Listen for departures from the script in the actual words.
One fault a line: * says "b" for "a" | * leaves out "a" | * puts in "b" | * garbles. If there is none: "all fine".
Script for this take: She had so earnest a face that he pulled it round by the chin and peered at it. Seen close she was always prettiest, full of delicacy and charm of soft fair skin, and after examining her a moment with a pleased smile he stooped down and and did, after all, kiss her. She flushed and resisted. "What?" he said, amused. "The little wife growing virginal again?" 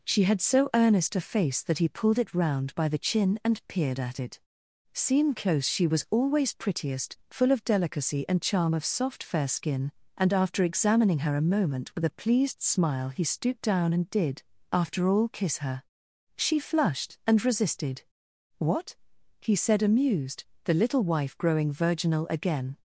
* leaves out "and"